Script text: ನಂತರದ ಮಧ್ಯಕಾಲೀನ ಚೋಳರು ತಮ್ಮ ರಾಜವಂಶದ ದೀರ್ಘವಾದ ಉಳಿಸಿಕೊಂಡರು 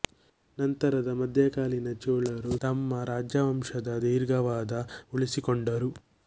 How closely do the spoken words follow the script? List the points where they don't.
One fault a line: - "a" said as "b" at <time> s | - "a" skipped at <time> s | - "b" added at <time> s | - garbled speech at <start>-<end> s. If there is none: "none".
none